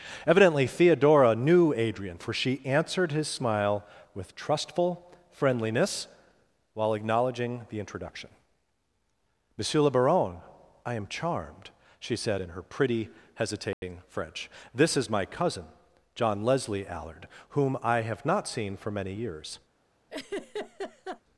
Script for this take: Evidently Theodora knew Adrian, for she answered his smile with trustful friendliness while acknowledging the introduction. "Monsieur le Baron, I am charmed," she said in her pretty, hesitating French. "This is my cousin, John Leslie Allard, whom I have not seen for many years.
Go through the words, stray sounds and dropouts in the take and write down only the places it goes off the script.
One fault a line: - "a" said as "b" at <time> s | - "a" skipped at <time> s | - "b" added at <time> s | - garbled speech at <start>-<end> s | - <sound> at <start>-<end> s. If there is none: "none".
- dropout at 13.7-13.8 s
- laugh at 20.1-21.2 s